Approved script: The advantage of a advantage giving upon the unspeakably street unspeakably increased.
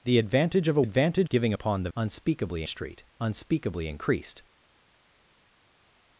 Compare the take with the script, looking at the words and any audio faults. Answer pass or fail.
pass